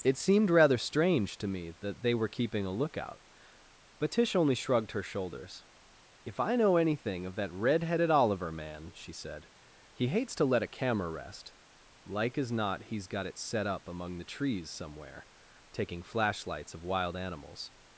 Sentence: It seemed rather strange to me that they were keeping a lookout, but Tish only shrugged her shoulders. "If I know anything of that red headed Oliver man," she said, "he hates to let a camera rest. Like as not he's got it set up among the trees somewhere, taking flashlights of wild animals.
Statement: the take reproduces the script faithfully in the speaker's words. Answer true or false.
true